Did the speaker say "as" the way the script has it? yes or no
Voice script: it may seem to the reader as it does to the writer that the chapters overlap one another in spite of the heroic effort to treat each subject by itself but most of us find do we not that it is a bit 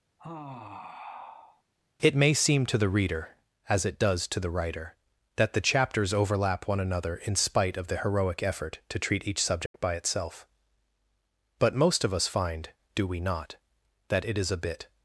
yes